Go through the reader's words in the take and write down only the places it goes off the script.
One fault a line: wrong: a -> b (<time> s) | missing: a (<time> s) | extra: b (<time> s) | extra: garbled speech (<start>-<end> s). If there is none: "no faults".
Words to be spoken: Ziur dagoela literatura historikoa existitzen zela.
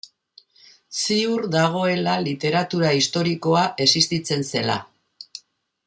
no faults